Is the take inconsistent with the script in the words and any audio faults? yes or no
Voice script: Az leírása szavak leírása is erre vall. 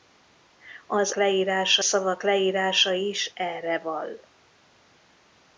no